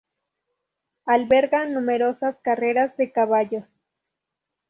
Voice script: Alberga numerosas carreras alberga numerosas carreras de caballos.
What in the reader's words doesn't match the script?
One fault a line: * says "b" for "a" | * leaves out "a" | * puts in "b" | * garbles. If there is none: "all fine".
* leaves out "alberga numerosas carreras"